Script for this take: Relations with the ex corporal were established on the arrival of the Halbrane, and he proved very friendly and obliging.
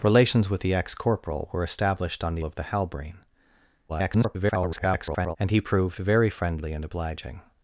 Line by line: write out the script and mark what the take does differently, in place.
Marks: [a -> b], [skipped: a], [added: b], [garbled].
Relations with the ex corporal were established on the [skipped: arrival] of the Halbrane, [garbled] and he proved very friendly and obliging.